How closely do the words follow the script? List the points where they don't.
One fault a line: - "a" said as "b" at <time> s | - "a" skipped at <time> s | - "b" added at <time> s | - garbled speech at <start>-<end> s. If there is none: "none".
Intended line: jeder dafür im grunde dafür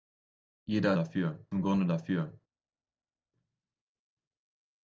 none